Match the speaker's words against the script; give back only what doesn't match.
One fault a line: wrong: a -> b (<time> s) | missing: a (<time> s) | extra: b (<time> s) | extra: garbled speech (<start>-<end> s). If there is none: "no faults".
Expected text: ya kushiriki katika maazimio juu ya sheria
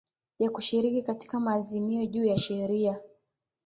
no faults